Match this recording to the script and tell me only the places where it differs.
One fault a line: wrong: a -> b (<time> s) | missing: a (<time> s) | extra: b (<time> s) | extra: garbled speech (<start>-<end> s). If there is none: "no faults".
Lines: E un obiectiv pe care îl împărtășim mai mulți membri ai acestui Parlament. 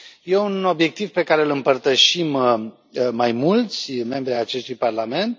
no faults